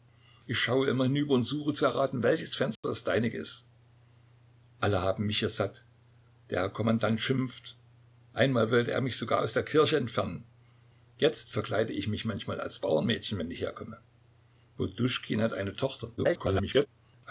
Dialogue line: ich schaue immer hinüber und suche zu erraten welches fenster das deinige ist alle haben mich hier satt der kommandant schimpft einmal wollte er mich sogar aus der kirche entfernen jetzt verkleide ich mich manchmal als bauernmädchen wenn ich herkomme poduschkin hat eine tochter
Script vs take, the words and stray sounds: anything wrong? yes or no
yes